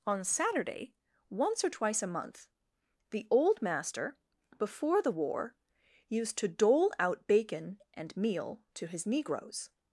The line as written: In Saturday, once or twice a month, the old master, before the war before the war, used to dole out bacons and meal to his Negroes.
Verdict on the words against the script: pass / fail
fail